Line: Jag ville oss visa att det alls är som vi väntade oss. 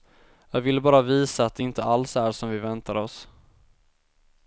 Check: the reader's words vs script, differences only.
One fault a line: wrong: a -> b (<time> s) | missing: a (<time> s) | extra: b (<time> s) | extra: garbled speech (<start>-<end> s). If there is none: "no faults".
wrong: oss -> bara (0.8 s)
extra: inte (1.6 s)